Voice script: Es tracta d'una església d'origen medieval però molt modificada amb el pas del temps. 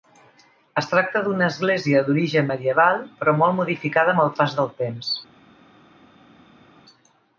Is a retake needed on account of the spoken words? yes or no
no